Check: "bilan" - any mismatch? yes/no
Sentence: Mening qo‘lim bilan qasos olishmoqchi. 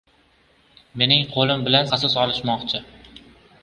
no